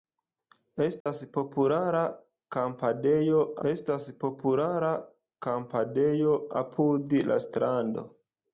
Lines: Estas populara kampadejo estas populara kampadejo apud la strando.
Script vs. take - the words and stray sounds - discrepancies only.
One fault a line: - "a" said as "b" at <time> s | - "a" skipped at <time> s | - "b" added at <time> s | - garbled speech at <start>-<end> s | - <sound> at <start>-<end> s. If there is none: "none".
- dropout at 1.0-1.1 s